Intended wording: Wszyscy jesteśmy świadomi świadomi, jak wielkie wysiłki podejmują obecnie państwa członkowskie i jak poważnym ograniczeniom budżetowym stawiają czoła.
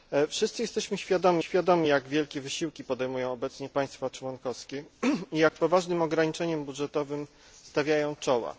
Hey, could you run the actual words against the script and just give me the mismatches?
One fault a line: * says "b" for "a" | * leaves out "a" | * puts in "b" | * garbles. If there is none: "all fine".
all fine